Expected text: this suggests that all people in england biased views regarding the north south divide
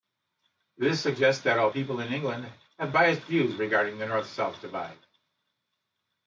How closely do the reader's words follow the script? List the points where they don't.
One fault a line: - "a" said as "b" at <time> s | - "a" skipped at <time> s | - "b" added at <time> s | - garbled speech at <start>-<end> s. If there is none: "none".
- "have" added at 2.8 s